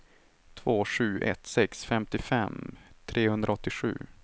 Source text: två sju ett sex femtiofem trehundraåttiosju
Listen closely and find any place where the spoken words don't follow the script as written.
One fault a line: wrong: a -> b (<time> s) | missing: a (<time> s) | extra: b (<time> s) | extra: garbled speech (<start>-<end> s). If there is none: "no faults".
no faults